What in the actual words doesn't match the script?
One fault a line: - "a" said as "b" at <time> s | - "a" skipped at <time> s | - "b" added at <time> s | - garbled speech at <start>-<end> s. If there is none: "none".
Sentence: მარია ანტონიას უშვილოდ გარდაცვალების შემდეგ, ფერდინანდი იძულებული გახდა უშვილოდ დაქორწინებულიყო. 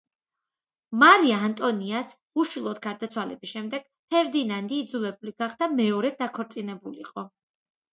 - "უშვილოდ" said as "მეორედ" at 5.8 s